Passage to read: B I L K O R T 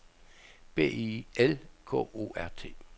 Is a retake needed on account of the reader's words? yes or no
no